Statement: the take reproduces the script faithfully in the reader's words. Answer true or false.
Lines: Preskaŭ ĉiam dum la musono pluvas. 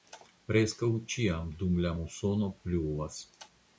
true